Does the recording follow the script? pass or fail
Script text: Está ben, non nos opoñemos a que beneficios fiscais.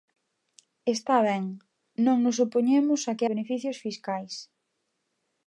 pass